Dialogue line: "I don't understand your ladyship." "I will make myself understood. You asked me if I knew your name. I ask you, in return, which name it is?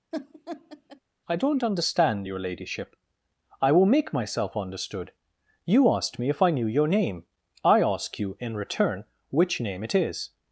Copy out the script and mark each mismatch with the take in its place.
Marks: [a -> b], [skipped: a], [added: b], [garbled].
"I don't understand your ladyship." "I will make myself understood. You asked me if I knew your name. I ask you, in return, which name it is?